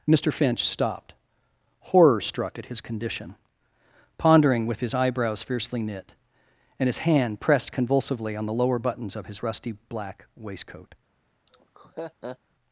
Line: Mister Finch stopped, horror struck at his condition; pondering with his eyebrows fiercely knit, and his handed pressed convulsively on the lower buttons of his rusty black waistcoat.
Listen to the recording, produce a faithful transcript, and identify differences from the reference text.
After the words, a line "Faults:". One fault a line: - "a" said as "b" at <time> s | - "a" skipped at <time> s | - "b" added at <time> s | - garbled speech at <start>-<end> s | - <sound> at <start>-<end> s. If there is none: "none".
Mister Finch stopped, horror struck at his condition; pondering with his eyebrows fiercely knit, and his hand pressed convulsively on the lower buttons of his rusty black waistcoat.
Faults:
- "handed" said as "hand" at 7.0 s
- laugh at 11.5-12.4 s